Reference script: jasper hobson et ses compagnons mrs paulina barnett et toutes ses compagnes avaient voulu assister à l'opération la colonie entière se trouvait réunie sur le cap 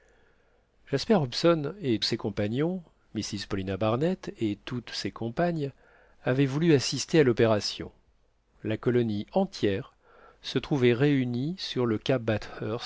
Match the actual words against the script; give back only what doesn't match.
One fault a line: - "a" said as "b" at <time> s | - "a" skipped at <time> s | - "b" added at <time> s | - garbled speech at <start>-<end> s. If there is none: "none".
none